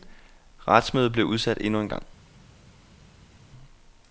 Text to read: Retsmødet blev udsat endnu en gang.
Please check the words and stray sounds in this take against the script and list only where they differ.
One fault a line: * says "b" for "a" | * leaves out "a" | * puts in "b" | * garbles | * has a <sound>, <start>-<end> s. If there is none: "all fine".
all fine